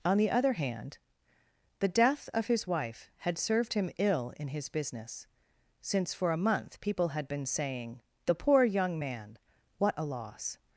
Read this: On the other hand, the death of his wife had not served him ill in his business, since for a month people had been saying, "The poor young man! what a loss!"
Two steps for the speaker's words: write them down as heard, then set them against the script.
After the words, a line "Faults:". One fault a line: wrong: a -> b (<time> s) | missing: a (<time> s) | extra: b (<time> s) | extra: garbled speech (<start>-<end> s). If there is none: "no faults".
On the other hand, the death of his wife had served him ill in his business, since for a month people had been saying, "The poor young man! what a loss!"
Faults:
missing: not (3.4 s)